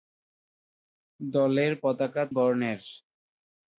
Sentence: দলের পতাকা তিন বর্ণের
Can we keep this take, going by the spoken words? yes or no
no